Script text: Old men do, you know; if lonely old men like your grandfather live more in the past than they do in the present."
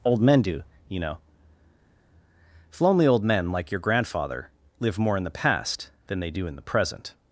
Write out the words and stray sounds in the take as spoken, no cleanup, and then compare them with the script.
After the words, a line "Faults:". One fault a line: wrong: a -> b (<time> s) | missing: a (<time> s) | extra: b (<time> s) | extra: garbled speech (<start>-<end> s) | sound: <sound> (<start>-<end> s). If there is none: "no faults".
Old men do, you know; if lonely old men like your grandfather live more in the past than they do in the present."
Faults:
no faults